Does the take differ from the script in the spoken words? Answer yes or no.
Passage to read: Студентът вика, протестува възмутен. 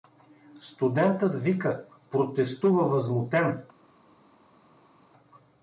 no